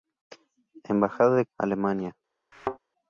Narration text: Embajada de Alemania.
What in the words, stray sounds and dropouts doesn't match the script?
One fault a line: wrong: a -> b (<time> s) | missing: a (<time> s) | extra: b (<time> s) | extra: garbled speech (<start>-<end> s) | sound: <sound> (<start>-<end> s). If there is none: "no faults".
sound: thud (2.5-2.8 s)